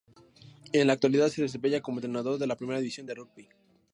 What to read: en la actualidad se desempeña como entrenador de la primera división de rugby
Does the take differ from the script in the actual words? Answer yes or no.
no